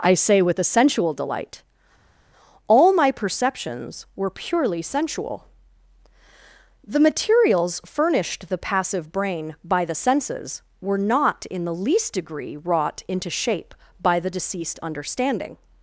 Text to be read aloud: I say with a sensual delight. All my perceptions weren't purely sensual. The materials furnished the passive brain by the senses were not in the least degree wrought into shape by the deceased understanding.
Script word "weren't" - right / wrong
wrong